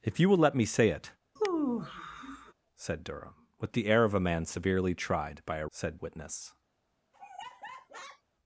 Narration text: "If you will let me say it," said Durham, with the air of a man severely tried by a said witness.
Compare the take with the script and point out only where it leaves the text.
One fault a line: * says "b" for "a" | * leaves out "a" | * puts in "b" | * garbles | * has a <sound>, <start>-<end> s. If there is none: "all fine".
* has a sigh, 1.4-2.5 s
* has a laugh, 7.1-8.2 s